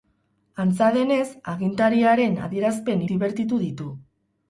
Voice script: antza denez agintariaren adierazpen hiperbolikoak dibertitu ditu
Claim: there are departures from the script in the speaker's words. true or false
true